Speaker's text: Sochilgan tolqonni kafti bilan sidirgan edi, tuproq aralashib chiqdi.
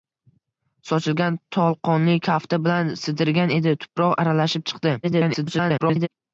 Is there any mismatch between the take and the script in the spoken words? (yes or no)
yes